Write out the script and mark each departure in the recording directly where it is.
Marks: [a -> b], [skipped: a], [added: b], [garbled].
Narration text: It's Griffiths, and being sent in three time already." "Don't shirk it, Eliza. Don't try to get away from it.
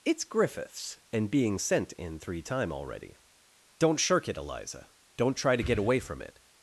It's Griffiths, and being sent in three time already." "Don't shirk it, Eliza. Don't try to get away from it.